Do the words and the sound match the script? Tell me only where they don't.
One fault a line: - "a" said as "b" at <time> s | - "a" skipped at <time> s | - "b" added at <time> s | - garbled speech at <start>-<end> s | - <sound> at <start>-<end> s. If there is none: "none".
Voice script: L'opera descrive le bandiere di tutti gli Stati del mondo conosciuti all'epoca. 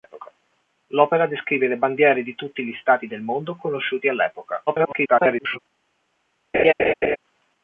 - garbled speech at 4.7-5.6 s
- laugh at 6.5-7.2 s